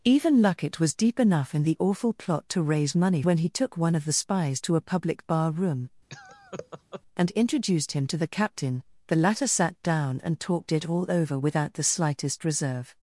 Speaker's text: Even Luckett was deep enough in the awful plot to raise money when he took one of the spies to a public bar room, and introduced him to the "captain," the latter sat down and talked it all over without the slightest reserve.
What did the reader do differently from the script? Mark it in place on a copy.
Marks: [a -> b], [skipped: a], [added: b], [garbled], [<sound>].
Even Luckett was deep enough in the awful plot to raise money when he took one of the spies to a public bar room, [laugh] and introduced him to the "captain," the latter sat down and talked it all over without the slightest reserve.